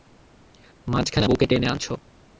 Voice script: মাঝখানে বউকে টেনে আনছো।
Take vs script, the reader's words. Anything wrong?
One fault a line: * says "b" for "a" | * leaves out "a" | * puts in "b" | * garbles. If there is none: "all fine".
all fine